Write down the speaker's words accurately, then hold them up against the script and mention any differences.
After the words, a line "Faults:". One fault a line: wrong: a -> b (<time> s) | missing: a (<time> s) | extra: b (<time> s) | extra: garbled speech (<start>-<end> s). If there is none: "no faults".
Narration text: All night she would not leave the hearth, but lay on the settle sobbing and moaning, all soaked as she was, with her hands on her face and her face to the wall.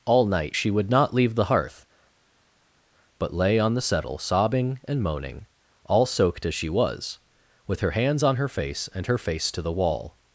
All night she would not leave the hearth, but lay on the settle sobbing and moaning, all soaked as she was, with her hands on her face and her face to the wall.
Faults:
no faults